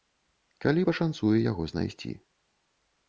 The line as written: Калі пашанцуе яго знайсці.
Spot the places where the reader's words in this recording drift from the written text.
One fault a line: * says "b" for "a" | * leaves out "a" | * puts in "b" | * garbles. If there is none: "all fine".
all fine